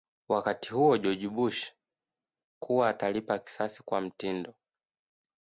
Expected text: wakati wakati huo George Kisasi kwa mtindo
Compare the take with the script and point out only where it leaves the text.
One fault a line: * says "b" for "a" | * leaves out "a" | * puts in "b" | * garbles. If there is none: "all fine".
* leaves out "wakati"
* puts in "Bush kuwa atalipa"